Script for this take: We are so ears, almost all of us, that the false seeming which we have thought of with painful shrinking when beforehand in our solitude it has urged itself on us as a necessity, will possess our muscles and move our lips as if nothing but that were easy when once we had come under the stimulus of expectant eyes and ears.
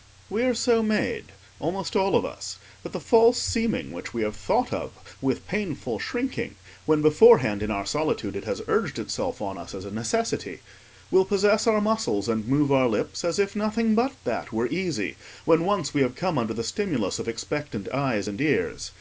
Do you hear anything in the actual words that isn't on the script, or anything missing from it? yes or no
yes